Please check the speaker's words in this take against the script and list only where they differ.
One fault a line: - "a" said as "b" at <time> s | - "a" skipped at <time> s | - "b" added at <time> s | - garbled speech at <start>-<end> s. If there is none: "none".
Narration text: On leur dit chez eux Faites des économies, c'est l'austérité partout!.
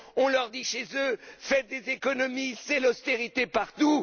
none